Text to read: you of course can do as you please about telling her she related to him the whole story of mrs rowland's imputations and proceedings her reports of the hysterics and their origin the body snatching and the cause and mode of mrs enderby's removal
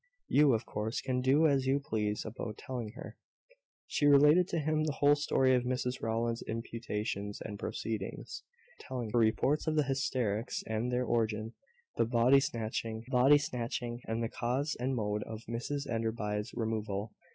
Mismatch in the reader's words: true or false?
true